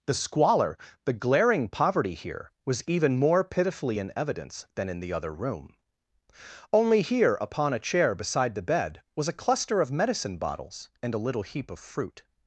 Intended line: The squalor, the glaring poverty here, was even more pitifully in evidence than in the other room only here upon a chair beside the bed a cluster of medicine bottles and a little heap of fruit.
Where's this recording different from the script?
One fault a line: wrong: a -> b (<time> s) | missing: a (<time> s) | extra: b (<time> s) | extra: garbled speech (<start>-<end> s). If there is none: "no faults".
extra: was (9.1 s)